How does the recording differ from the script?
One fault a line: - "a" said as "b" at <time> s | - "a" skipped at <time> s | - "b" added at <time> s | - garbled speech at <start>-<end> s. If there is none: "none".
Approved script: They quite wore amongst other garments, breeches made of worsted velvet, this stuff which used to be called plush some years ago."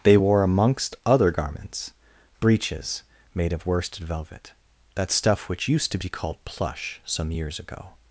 - "quite" skipped at 0.2 s
- "this" said as "that" at 4.9 s